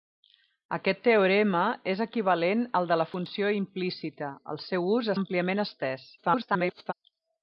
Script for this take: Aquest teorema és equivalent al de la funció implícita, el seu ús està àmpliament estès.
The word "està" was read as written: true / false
false